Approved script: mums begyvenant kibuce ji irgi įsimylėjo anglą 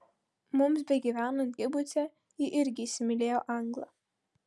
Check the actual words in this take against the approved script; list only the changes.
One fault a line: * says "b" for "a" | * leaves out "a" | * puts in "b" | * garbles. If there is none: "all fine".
all fine